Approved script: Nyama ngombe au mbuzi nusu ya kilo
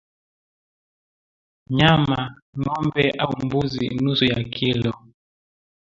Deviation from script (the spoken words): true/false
false